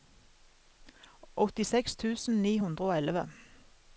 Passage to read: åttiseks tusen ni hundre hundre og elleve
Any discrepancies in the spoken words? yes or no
yes